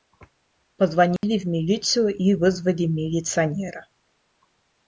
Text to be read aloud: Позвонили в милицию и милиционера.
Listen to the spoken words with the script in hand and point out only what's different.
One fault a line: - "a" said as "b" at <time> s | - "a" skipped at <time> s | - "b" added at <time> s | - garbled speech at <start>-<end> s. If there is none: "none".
- "вызвали" added at 2.3 s